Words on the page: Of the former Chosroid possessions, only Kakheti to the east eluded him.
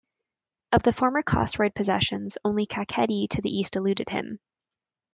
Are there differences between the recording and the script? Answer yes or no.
no